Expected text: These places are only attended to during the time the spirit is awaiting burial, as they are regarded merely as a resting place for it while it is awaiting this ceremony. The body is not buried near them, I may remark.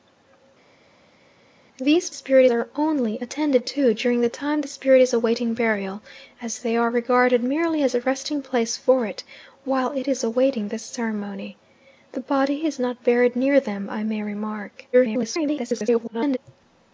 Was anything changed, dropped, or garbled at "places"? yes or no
yes